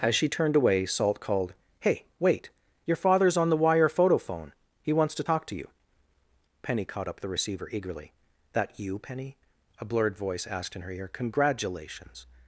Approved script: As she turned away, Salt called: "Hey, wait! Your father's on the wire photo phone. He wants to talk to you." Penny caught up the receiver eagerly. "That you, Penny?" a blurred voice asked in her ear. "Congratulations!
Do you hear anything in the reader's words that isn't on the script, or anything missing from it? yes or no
no